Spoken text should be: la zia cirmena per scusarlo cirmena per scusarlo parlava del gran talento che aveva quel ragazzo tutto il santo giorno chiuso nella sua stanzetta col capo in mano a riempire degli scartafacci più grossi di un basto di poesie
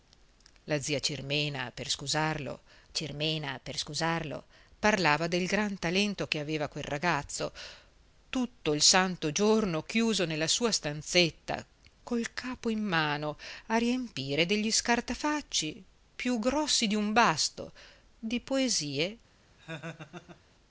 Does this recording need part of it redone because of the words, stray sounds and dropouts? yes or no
yes